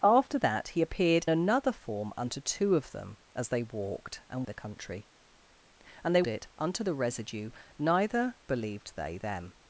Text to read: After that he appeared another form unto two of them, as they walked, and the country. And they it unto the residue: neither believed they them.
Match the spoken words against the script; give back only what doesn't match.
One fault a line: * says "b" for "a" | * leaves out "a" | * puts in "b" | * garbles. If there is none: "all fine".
all fine